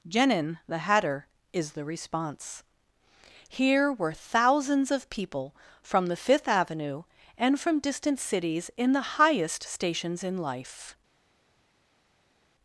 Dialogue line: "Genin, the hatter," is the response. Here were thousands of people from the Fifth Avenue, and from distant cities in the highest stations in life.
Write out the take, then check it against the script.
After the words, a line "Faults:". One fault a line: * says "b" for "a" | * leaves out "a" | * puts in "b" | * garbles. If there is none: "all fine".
"Genin, the hatter," is the response. Here were thousands of people from the Fifth Avenue, and from distant cities in the highest stations in life.
Faults:
all fine